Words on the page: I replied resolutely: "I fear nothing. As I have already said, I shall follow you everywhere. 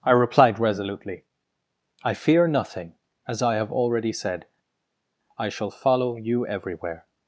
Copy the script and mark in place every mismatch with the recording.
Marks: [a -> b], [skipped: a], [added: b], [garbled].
I replied resolutely: "I fear nothing. As I have already said, I shall follow you everywhere.